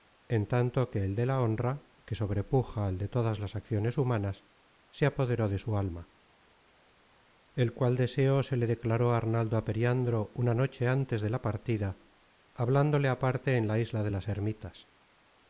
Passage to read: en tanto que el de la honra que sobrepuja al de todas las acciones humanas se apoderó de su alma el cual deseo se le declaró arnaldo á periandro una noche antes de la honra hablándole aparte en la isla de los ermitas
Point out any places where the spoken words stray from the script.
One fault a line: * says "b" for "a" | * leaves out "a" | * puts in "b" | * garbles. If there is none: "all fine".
* says "partida" for "honra"
* says "las" for "los"